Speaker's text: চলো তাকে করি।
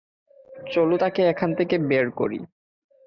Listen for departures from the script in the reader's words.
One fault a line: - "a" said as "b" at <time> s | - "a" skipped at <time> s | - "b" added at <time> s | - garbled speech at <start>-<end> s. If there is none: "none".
- "এখান থেকে বের" added at 1.3 s